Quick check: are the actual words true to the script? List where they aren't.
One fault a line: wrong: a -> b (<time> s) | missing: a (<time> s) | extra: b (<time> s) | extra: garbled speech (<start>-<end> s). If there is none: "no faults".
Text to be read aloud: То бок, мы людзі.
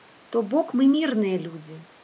extra: мірныя (1.0 s)